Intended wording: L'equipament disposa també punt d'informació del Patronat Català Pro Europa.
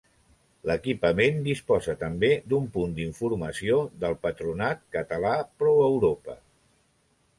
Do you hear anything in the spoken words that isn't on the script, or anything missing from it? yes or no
yes